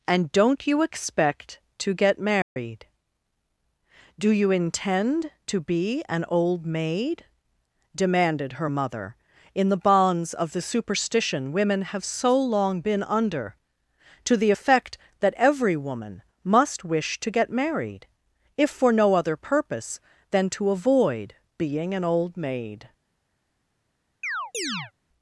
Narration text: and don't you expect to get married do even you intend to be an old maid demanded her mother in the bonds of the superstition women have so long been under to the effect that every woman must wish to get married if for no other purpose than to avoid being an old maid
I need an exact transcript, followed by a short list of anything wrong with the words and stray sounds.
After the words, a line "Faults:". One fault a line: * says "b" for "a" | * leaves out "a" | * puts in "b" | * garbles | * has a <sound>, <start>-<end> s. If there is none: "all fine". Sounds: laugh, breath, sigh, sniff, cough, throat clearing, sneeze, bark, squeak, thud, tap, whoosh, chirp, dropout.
and don't you expect to get married do you intend to be an old maid demanded her mother in the bonds of the superstition women have so long been under to the effect that every woman must wish to get married if for no other purpose than to avoid being an old maid
Faults:
* has a dropout, 2.4-2.6 s
* leaves out "even"
* has a chirp, 24.2-24.9 s